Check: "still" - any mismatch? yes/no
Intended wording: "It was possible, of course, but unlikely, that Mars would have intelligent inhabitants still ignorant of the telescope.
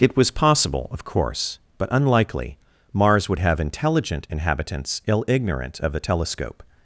yes